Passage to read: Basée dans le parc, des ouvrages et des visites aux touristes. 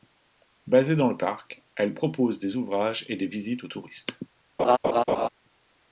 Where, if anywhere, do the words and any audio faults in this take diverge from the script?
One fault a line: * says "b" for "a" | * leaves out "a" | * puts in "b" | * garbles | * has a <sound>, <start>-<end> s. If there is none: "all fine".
* puts in "elle propose"
* has a laugh, 4.6-5.3 s